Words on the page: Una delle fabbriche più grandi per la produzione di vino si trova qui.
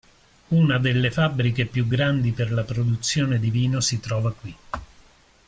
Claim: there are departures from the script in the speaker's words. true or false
false